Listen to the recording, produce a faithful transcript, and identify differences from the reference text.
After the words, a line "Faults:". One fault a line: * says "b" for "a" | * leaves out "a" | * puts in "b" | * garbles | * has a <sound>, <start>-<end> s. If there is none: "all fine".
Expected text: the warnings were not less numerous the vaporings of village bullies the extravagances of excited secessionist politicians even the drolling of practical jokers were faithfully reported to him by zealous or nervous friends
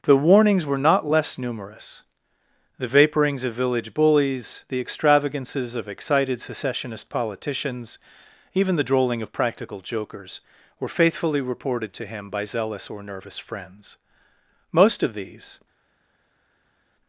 the warnings were not less numerous the vaporings of village bullies the extravagances of excited secessionist politicians even the drolling of practical jokers were faithfully reported to him by zealous or nervous friends most of these
Faults:
* puts in "most of these"